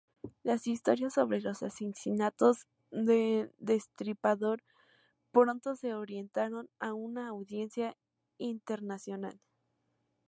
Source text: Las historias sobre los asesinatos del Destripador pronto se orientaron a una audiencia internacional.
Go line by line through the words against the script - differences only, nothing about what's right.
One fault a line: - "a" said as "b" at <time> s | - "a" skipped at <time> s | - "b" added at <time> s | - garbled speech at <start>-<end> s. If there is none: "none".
none